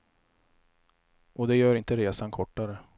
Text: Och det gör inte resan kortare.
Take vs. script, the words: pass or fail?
pass